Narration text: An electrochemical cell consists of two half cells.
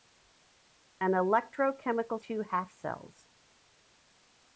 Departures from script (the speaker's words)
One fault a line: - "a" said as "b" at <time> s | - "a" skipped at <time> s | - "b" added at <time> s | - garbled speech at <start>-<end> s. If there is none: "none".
- "cell consists of" skipped at 2.2 s